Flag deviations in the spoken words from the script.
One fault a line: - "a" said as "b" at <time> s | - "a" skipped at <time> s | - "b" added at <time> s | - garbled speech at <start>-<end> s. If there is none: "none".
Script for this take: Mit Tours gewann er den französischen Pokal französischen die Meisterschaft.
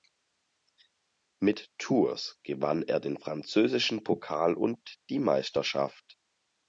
- "französischen" said as "und" at 4.5 s